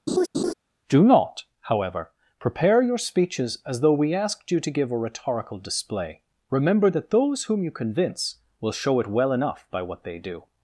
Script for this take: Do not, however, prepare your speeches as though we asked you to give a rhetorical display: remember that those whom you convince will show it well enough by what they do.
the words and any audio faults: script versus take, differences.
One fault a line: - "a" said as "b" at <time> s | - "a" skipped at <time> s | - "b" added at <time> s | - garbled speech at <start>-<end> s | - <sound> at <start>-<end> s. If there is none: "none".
- laugh at 0.1-0.5 s